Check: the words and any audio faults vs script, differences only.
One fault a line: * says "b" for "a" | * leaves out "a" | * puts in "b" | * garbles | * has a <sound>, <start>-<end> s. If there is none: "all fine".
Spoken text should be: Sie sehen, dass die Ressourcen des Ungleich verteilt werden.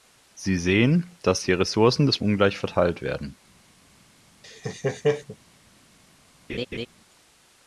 * has a laugh, 4.4-5.4 s
* has a laugh, 6.5-6.9 s